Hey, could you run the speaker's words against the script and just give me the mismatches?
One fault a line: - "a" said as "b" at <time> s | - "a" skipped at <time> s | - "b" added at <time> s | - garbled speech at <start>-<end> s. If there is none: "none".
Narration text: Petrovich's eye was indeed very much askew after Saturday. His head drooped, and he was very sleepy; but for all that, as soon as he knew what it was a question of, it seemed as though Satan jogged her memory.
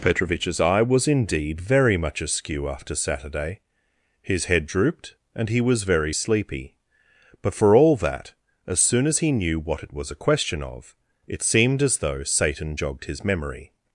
- "her" said as "his" at 13.1 s